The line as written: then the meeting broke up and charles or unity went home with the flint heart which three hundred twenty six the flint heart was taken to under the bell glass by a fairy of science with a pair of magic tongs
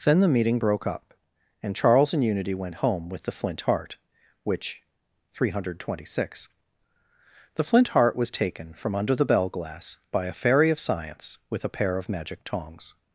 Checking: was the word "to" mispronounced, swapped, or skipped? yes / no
yes